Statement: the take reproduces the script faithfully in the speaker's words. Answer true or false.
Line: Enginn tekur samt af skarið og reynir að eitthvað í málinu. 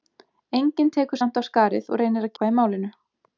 true